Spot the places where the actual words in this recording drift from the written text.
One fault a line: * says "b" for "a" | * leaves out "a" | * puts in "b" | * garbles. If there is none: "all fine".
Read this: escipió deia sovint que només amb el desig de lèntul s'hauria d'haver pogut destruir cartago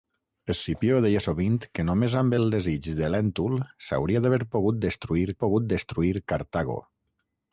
* puts in "pogut destruir"